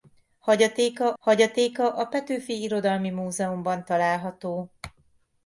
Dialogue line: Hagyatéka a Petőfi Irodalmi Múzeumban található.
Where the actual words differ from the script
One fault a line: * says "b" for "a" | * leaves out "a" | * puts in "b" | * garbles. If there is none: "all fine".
* puts in "hagyatéka"